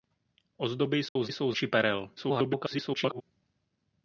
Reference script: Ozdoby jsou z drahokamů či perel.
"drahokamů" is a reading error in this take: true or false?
true